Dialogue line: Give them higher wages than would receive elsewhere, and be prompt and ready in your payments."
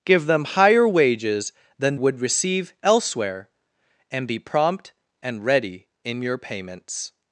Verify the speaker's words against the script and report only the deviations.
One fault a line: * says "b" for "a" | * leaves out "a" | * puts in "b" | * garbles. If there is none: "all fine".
all fine